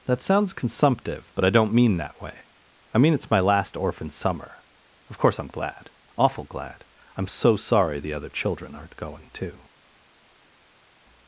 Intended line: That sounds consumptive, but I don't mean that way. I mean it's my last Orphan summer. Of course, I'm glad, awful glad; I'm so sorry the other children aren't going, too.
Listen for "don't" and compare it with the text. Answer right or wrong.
right